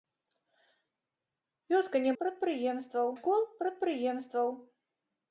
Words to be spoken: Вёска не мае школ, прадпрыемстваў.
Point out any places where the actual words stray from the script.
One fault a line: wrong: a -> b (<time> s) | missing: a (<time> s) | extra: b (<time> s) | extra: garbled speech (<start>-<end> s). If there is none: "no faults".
wrong: мае -> прадпрыемстваў (2.2 s)